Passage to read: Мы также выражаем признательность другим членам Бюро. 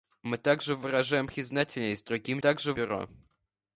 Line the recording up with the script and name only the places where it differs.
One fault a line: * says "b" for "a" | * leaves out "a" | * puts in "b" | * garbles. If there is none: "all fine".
* says "также" for "членам"